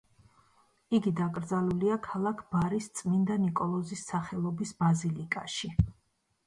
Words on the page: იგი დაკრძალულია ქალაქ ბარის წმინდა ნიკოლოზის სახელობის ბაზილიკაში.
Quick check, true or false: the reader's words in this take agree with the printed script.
true